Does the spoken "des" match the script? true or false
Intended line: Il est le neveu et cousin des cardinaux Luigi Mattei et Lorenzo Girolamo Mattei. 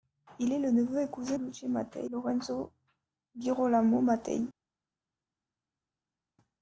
false